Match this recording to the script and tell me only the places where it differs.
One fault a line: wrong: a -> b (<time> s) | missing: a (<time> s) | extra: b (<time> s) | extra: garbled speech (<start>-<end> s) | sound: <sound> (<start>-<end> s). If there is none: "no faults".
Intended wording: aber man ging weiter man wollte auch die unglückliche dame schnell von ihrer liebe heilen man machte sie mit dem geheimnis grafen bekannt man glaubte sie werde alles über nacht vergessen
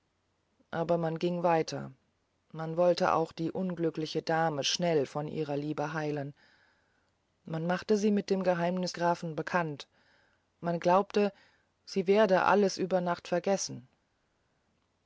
no faults